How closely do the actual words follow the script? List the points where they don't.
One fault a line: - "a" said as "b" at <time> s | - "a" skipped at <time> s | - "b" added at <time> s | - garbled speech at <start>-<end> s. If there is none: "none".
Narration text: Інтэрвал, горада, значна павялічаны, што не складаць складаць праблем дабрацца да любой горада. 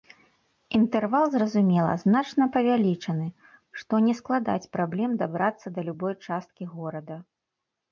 - "горада" said as "зразумела" at 1.4 s
- "складаць" skipped at 4.7 s
- "часткі" added at 6.3 s